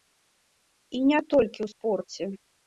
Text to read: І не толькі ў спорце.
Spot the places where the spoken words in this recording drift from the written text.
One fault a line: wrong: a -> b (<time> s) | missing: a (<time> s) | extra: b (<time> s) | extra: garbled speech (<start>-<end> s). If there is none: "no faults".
no faults